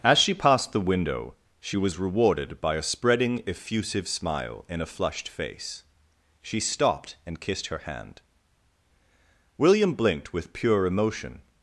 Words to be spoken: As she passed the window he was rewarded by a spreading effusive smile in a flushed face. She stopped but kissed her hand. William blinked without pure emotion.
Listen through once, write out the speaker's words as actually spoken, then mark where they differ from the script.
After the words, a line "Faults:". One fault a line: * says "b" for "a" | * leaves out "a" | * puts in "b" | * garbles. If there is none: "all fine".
As she passed the window she was rewarded by a spreading effusive smile in a flushed face. She stopped and kissed her hand. William blinked with pure emotion.
Faults:
* says "she" for "he"
* says "and" for "but"
* says "with" for "without"